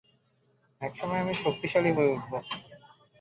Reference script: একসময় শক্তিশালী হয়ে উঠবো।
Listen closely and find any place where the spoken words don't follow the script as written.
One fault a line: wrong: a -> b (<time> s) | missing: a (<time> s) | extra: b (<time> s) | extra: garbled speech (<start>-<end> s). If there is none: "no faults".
extra: আমি (1.2 s)